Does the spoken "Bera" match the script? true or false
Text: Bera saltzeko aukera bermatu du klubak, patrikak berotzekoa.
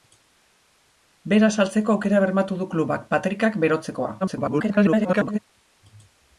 true